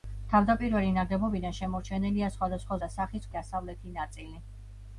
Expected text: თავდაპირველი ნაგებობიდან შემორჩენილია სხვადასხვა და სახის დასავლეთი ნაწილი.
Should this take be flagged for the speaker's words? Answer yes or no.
no